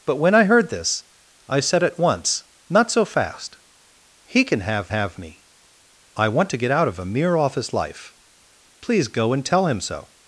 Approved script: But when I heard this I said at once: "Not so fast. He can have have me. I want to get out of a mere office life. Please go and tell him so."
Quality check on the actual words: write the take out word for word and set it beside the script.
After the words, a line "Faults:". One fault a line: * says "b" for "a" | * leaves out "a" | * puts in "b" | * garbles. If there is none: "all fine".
But when I heard this I said at once: "Not so fast. He can have have me. I want to get out of a mere office life. Please go and tell him so."
Faults:
all fine